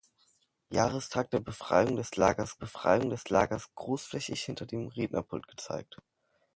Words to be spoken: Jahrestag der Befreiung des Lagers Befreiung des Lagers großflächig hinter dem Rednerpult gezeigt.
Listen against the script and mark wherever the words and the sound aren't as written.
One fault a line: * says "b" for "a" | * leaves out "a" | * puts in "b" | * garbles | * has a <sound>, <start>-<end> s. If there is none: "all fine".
all fine